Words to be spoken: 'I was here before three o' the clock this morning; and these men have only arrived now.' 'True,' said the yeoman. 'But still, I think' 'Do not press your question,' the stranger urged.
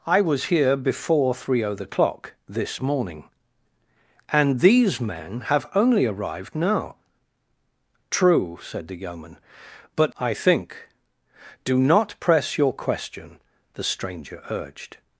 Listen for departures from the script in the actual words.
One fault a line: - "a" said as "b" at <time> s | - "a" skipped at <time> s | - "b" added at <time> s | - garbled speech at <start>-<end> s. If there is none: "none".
- "still" skipped at 10.2 s